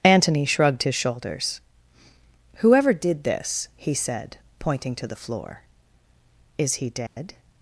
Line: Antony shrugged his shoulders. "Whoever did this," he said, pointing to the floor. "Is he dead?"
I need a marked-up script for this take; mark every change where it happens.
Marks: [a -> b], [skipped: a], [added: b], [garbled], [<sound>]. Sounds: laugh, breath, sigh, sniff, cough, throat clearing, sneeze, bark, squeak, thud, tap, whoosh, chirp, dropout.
Antony shrugged his shoulders. "Whoever did this," he said, pointing to the floor. "Is he dead?" [dropout]